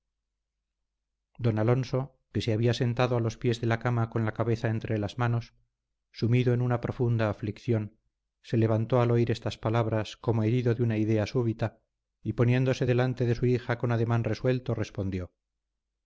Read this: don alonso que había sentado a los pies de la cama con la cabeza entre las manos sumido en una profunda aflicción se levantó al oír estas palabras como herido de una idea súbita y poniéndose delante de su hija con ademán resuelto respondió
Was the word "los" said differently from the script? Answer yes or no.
no